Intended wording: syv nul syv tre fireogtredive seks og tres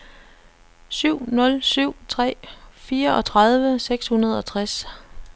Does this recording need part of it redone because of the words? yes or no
yes